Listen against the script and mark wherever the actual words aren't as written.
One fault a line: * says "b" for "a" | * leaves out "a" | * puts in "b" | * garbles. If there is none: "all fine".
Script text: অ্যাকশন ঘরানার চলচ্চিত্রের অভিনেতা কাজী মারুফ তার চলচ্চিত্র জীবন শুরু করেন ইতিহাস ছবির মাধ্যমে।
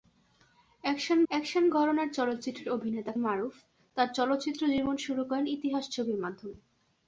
* puts in "অ্যাকশন"
* leaves out "কাজী"